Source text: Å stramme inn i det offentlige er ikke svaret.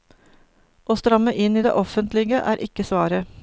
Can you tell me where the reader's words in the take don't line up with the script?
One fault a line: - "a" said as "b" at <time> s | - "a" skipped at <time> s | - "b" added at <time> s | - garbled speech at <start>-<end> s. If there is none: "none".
none